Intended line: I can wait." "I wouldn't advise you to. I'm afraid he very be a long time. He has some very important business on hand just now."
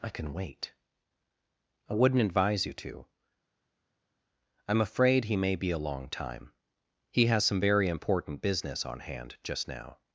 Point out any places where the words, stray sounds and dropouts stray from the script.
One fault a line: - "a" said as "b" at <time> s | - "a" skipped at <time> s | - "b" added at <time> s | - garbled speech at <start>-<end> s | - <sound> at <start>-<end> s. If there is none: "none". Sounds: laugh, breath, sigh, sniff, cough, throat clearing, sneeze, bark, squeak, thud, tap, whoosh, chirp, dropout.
- "very" said as "may" at 5.4 s